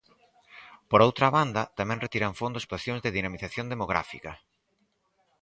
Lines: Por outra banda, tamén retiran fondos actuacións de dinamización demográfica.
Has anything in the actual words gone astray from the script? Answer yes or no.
no